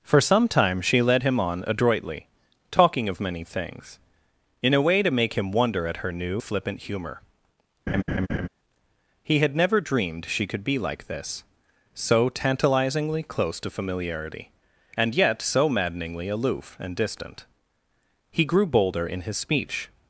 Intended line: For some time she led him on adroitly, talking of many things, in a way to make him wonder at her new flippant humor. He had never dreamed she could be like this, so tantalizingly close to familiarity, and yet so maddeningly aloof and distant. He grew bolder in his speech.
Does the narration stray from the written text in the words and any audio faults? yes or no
yes